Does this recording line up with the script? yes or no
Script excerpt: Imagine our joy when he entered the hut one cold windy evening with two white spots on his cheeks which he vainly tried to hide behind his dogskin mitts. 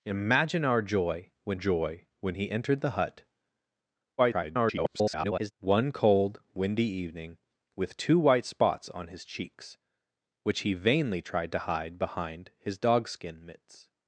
no